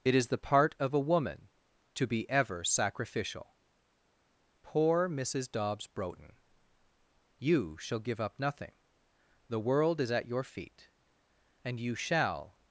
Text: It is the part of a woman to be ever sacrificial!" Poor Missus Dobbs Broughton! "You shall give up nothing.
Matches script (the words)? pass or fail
fail